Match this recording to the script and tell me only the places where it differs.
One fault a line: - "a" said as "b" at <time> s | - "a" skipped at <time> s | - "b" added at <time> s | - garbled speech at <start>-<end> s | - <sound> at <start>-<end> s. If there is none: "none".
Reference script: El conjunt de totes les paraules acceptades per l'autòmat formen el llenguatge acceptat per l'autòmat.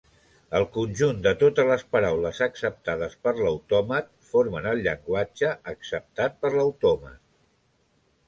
none